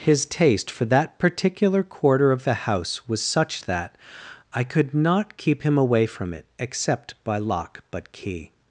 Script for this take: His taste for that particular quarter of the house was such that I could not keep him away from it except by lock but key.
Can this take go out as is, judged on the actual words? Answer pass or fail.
pass